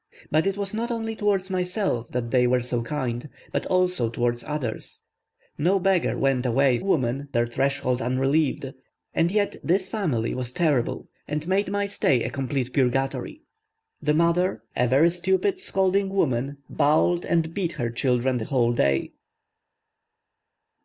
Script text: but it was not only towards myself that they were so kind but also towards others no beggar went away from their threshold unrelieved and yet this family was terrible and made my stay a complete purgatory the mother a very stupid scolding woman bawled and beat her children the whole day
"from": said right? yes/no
no